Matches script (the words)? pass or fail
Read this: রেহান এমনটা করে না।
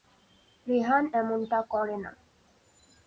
pass